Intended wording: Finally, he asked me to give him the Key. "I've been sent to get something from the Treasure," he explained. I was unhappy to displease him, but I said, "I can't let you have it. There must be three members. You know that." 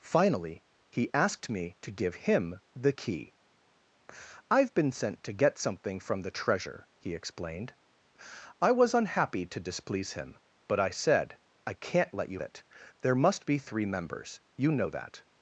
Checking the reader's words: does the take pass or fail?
fail